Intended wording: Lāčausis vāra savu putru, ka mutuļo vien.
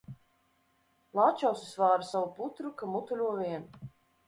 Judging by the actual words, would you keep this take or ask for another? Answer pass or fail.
pass